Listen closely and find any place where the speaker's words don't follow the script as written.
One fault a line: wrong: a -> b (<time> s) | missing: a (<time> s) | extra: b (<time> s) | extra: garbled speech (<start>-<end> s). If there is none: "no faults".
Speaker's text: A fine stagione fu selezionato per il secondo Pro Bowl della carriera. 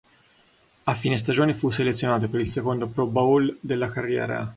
no faults